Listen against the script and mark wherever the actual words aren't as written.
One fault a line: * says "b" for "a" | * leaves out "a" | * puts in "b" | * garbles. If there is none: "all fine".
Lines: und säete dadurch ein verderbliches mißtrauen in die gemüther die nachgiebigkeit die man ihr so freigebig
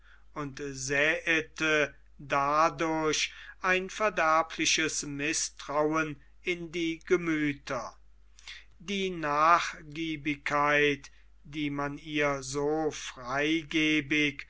all fine